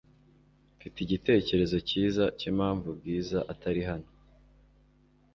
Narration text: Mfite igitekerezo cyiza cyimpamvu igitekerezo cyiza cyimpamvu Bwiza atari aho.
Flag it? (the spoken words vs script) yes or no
yes